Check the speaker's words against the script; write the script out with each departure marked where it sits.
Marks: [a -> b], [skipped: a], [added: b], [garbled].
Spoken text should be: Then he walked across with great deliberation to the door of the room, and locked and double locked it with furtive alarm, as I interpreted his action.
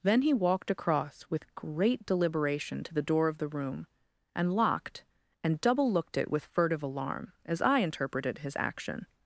Then he walked across with great deliberation to the door of the room, and locked and double [locked -> looked] it with furtive alarm, as I interpreted his action.